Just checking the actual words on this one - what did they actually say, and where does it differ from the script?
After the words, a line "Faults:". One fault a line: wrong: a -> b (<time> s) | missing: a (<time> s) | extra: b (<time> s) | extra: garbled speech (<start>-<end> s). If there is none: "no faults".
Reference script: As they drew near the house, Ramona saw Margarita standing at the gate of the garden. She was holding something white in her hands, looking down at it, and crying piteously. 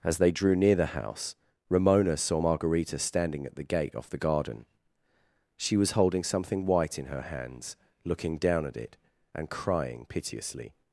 As they drew near the house, Ramona saw Margarita standing at the gate off the garden. She was holding something white in her hands, looking down at it, and crying piteously.
Faults:
wrong: of -> off (3.9 s)